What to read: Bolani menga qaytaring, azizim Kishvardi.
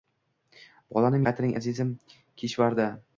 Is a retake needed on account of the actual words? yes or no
yes